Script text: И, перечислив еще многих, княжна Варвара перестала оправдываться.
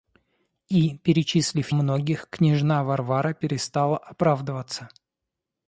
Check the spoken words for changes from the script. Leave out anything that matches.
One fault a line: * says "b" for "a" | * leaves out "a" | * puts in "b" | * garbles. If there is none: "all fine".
* leaves out "еще"